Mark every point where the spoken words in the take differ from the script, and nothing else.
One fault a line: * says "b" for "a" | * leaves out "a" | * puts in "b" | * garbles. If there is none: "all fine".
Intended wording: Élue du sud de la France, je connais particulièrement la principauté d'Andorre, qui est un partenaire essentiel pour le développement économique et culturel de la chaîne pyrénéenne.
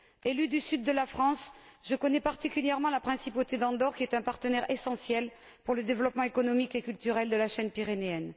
all fine